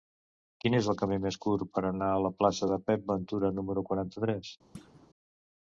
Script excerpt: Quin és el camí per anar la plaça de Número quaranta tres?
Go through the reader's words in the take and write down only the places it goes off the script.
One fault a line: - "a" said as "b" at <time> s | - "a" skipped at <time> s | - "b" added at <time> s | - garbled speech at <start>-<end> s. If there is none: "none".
- "més curt" added at 1.2 s
- "a" added at 2.1 s
- "Pep Ventura" added at 2.9 s